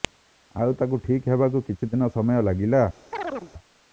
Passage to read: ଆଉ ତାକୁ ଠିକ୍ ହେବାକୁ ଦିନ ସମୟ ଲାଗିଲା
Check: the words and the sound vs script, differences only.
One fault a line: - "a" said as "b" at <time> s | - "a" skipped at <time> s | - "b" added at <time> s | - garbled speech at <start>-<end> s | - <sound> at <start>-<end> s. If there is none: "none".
- "କିଛି" added at 1.7 s
- chirp at 3.1-3.5 s